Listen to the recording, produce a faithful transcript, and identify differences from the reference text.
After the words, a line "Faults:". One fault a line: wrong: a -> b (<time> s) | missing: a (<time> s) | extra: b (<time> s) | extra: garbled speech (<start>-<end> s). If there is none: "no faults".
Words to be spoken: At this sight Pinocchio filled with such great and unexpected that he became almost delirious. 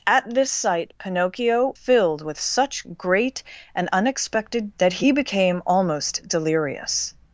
At this sight Pinocchio filled with such great and unexpected that he became almost delirious.
Faults:
no faults